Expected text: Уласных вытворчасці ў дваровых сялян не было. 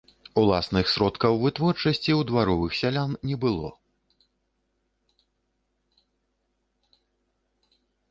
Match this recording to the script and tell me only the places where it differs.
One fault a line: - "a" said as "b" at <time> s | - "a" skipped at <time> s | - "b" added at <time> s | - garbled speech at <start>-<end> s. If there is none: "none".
- "сродкаў" added at 0.9 s